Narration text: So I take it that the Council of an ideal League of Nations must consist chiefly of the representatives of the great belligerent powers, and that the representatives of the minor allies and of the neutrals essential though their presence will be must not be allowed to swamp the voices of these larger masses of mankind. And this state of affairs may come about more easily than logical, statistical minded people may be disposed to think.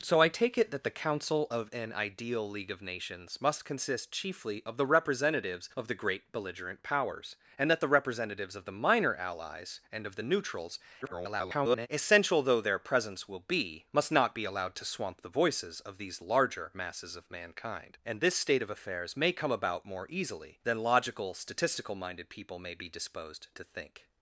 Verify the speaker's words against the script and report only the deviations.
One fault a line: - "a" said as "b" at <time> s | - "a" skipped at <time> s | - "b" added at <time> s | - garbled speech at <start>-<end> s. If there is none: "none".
- garbled speech at 11.0-11.9 s